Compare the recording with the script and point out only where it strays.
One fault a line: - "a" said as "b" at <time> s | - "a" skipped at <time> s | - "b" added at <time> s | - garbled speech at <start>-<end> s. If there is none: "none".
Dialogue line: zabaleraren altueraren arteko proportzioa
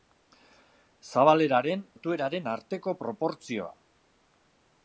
none